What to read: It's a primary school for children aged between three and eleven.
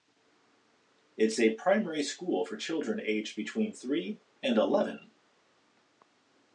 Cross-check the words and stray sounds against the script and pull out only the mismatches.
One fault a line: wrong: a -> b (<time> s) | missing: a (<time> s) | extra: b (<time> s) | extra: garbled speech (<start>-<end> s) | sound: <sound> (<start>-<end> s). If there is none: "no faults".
no faults